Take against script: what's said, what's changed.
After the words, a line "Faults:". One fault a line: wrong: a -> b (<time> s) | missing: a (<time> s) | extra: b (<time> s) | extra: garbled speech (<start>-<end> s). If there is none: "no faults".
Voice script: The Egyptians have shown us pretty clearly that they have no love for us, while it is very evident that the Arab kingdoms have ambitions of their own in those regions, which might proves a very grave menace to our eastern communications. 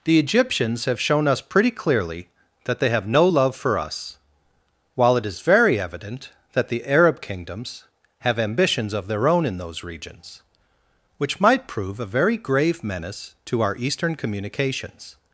The Egyptians have shown us pretty clearly that they have no love for us, while it is very evident that the Arab kingdoms have ambitions of their own in those regions, which might prove a very grave menace to our eastern communications.
Faults:
wrong: proves -> prove (11.7 s)